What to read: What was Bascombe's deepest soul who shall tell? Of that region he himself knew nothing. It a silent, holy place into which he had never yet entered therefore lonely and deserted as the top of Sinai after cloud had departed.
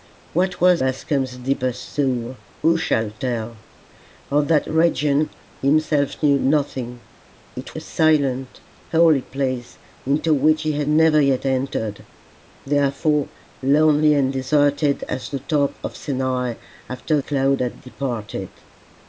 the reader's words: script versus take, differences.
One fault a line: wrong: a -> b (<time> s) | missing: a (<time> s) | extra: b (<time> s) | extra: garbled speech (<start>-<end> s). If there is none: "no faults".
no faults